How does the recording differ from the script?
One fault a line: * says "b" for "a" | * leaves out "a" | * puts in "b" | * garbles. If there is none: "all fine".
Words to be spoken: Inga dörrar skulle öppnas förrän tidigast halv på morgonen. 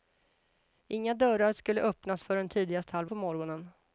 all fine